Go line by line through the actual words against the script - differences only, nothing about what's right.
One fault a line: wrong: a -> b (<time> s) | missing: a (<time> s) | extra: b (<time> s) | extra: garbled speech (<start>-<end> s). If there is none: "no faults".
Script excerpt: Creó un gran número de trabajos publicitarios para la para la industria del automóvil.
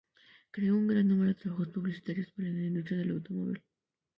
missing: para la (2.7 s)